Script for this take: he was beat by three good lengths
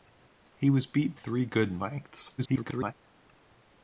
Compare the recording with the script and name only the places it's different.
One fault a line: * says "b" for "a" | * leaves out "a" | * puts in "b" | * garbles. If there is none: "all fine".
* leaves out "by"
* garbles